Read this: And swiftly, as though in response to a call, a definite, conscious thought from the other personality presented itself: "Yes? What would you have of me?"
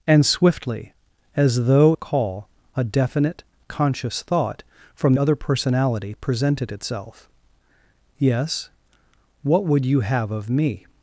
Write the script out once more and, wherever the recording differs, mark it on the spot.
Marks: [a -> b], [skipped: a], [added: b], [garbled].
And swiftly, as though [skipped: in response to] a call, a definite, conscious thought from [skipped: the] other personality presented itself: "Yes? What would you have of me?"